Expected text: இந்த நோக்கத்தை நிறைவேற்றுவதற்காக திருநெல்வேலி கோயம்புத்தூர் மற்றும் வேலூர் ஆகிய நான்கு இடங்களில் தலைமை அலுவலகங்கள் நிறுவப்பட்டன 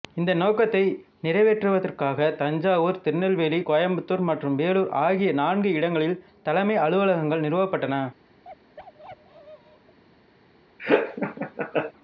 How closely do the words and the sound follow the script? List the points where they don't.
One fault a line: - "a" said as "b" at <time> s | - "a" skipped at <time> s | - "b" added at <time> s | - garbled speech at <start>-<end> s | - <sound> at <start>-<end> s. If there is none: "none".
- "தஞ்சாவூர்" added at 2.4 s
- bark at 8.4-10.0 s
- laugh at 10.8-11.9 s